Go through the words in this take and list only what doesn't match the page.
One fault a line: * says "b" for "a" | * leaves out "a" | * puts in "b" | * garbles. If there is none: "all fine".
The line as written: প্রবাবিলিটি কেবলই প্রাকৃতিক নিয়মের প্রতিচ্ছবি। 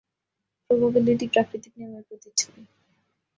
* leaves out "কেবলই"